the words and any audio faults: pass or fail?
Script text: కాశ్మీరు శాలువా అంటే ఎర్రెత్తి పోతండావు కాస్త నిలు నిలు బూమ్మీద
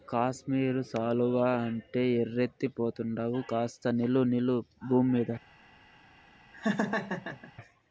fail